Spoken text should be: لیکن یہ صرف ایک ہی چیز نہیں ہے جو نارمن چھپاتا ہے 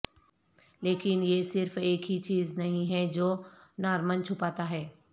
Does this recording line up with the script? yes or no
yes